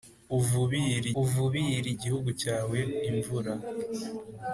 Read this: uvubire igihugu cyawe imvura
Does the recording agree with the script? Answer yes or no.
no